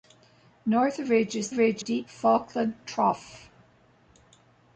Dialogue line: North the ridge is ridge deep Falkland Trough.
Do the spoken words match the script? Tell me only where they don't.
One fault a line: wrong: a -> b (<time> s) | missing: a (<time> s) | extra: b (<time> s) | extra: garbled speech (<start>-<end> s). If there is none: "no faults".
no faults